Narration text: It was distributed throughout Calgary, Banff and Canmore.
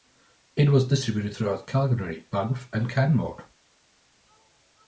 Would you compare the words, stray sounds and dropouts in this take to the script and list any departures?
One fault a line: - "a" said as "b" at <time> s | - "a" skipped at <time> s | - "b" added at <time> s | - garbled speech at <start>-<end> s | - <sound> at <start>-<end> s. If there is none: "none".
none